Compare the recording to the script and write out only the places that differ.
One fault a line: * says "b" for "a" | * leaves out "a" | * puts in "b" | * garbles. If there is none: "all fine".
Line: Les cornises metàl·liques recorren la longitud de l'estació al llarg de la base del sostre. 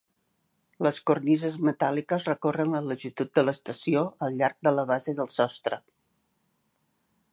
all fine